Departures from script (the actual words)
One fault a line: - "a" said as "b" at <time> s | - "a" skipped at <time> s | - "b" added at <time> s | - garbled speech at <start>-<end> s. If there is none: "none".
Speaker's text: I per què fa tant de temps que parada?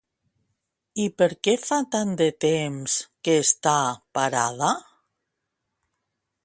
- "està" added at 3.4 s